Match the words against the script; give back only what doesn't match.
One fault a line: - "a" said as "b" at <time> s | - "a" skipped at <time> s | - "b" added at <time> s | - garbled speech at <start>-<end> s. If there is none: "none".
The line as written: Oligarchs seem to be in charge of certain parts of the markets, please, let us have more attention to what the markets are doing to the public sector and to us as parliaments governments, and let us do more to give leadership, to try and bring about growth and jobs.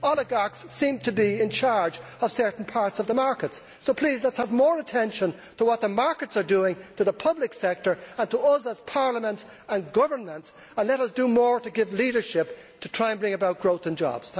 - "so" added at 3.8 s
- "and" added at 9.7 s